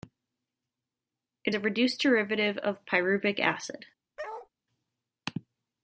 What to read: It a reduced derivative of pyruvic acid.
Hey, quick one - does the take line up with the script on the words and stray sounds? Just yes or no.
no